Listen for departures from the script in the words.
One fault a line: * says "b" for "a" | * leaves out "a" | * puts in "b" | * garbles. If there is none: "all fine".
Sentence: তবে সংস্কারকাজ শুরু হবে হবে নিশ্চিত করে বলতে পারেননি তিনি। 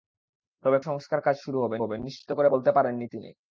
all fine